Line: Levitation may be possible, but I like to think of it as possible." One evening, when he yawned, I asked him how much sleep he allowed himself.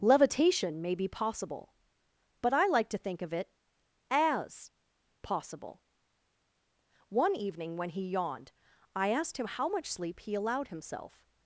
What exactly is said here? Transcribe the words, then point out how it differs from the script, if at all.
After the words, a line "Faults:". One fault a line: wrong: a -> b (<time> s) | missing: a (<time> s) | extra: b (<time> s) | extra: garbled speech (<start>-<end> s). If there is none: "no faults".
Levitation may be possible, but I like to think of it as possible." One evening, when he yawned, I asked him how much sleep he allowed himself.
Faults:
no faults